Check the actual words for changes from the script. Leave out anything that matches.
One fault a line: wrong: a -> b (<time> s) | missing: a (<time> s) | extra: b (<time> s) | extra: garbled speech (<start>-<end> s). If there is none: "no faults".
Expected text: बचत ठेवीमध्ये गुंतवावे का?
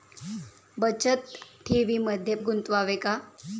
no faults